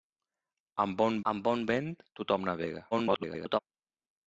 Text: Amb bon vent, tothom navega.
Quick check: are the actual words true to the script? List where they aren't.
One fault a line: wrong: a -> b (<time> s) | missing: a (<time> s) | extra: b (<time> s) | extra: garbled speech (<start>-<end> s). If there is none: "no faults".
extra: amb bon (1.3 s)
extra: garbled speech (2.9-3.6 s)